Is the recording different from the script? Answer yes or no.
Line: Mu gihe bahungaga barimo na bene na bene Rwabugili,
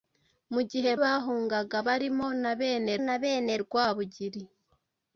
no